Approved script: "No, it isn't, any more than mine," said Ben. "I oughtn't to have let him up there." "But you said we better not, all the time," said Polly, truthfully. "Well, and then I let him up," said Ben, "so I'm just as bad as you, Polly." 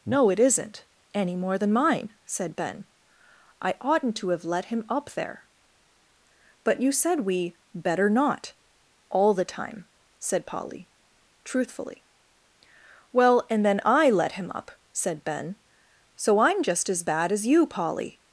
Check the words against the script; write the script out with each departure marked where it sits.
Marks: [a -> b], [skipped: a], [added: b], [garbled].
"No, it isn't, any more than mine," said Ben. "I oughtn't to have let him up there." "But you said we better not, all the time," said Polly, truthfully. "Well, and then I let him up," said Ben, "so I'm just as bad as you, Polly."